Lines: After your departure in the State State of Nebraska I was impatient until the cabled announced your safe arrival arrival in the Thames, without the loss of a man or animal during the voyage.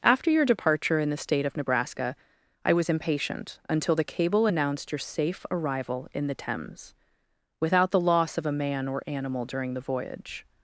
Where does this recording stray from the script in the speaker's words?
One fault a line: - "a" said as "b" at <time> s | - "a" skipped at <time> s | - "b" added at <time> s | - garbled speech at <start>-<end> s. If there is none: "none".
- "State" skipped at 1.4 s
- "cabled" said as "cable" at 4.0 s
- "arrival" skipped at 6.1 s